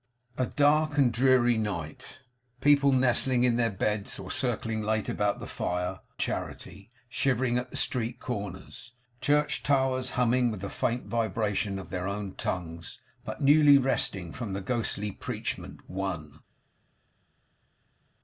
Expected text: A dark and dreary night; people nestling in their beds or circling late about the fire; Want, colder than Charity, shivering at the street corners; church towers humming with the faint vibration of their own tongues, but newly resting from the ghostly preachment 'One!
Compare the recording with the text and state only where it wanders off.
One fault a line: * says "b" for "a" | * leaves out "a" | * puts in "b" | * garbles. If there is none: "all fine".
* leaves out "Want colder than"